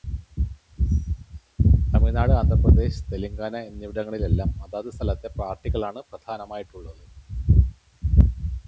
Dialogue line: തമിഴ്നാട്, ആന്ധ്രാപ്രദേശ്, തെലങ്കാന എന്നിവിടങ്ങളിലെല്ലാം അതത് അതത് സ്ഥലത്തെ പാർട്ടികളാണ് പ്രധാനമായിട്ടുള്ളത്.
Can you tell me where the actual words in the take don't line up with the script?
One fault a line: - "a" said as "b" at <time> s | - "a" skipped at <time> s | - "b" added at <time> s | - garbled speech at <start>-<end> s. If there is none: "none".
- "അതത്" skipped at 4.9 s